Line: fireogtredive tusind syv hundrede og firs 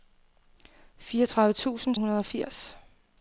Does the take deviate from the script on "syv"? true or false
true